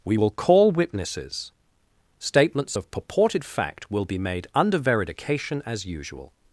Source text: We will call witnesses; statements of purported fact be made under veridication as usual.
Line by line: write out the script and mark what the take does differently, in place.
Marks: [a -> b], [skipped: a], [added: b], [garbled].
We will call witnesses; statements of purported fact [added: will] be made under veridication as usual.